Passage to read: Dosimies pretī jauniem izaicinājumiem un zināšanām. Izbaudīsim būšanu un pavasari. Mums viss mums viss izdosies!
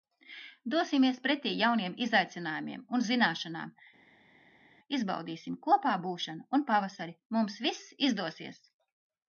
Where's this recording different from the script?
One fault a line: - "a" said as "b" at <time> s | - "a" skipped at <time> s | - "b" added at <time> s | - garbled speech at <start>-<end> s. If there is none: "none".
- "kopā" added at 5.7 s
- "mums viss" skipped at 7.9 s